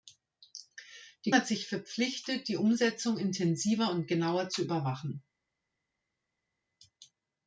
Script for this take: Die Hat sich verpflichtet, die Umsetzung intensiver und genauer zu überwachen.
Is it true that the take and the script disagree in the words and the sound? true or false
false